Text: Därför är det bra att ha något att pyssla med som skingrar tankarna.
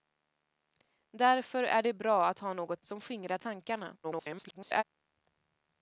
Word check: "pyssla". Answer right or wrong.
wrong